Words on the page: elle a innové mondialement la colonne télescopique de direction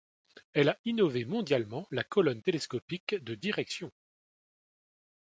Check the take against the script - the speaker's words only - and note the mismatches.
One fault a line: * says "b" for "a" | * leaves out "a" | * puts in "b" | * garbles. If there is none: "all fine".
all fine